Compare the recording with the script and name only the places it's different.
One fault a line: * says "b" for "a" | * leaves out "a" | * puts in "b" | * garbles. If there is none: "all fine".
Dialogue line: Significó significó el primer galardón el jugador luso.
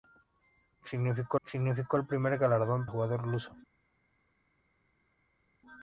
all fine